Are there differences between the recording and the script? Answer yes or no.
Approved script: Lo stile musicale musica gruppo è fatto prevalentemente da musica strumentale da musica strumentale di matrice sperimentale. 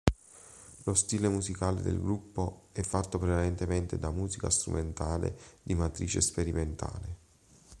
yes